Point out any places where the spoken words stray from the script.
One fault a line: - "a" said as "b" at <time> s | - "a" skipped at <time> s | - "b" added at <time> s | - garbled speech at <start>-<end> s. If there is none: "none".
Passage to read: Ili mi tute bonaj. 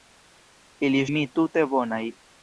none